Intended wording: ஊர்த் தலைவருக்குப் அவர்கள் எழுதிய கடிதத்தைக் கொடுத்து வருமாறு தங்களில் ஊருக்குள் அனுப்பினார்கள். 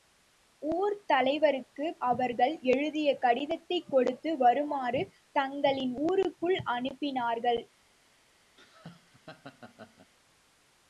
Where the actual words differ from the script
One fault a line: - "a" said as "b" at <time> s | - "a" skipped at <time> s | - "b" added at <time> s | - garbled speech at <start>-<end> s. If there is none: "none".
none